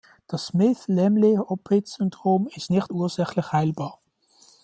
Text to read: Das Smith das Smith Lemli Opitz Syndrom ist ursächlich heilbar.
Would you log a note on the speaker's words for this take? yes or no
yes